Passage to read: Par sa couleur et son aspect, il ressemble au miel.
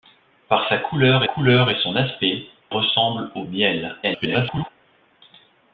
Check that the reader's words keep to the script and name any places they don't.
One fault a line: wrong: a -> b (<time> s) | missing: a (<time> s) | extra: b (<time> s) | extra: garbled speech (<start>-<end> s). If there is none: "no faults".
extra: couleur (1.2 s)
missing: il (2.5 s)
extra: garbled speech (4.0-4.7 s)